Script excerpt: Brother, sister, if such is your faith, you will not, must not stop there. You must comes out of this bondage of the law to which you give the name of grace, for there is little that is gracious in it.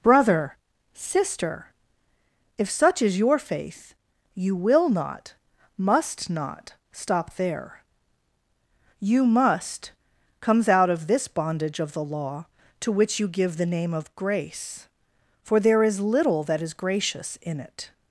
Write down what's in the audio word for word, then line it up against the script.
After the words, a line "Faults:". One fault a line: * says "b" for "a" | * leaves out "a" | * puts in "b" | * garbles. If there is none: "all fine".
Brother, sister, if such is your faith, you will not, must not stop there. You must comes out of this bondage of the law to which you give the name of grace, for there is little that is gracious in it.
Faults:
all fine